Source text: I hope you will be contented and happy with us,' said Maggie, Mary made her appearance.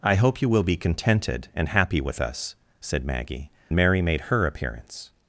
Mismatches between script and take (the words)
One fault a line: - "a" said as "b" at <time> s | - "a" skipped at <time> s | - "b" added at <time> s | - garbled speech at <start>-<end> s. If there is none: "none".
none